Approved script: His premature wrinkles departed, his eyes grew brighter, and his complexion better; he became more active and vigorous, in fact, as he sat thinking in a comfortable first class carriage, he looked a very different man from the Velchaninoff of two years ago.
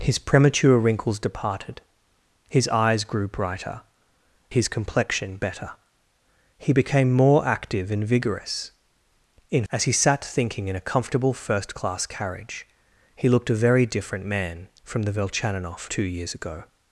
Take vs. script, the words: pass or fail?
fail